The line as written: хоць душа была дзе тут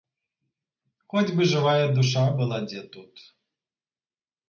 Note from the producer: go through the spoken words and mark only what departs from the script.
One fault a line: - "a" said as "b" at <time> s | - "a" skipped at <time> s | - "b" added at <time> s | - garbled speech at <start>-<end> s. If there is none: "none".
- "бы жывая" added at 1.4 s